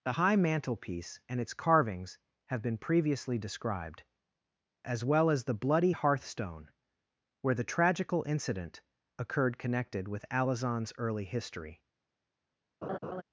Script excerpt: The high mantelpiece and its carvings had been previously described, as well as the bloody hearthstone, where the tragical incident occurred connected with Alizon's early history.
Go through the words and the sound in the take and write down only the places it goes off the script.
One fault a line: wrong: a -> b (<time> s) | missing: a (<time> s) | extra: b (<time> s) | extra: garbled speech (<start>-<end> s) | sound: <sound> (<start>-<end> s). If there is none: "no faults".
wrong: had -> have (2.5 s)
sound: laugh (12.8-13.2 s)